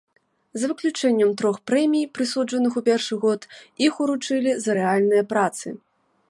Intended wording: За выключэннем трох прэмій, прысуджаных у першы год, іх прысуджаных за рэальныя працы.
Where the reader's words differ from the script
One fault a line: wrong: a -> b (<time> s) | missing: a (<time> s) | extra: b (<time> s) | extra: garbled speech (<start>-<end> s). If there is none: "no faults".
wrong: прысуджаных -> уручылі (4.1 s)